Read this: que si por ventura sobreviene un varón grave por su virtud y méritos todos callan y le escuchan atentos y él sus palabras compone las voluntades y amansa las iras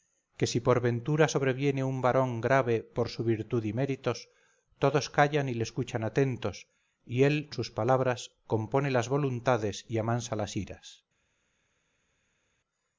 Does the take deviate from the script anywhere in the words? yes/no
no